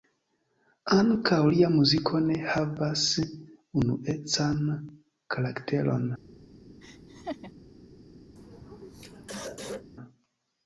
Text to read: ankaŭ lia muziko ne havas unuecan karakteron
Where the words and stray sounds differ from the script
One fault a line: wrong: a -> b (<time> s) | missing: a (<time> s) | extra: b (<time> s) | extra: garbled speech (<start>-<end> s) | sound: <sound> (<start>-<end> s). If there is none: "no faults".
sound: laugh (6.8-7.5 s)
sound: throat clearing (8.4-9.9 s)